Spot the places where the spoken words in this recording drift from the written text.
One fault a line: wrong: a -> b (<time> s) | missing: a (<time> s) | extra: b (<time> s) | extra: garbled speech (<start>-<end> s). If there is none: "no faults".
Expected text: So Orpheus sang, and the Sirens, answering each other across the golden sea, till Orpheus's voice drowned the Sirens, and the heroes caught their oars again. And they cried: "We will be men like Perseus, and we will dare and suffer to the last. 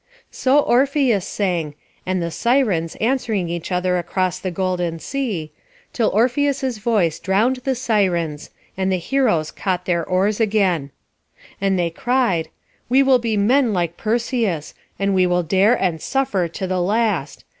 no faults